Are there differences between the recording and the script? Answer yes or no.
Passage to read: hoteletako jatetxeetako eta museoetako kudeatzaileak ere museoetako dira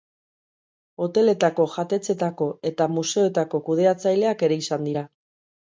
yes